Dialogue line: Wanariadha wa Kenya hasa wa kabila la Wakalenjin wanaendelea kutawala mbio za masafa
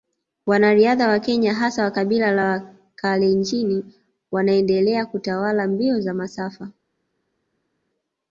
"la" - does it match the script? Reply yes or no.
yes